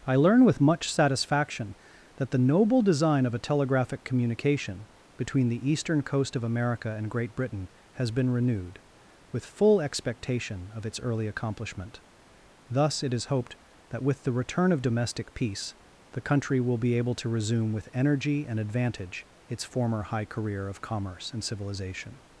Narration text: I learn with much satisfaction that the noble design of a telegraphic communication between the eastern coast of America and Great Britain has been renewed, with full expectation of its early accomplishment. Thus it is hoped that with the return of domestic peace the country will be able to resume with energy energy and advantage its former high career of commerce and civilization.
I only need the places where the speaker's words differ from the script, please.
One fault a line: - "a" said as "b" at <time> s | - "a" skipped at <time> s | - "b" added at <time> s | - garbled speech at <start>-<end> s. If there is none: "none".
- "energy" skipped at 18.5 s